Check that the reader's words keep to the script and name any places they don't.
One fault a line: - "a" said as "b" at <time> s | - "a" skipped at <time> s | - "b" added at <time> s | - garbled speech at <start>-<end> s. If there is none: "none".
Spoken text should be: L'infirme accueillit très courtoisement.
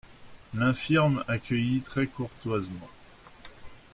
none